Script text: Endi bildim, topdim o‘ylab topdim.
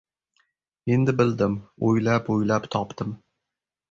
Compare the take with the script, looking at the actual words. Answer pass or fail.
fail